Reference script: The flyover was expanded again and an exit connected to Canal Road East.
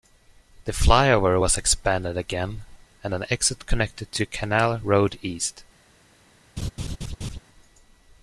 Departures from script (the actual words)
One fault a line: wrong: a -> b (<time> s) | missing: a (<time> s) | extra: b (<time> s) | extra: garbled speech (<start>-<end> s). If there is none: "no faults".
no faults